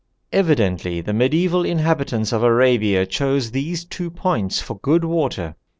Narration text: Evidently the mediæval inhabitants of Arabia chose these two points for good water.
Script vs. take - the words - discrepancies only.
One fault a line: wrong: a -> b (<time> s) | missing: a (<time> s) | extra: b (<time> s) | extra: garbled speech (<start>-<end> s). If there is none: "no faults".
no faults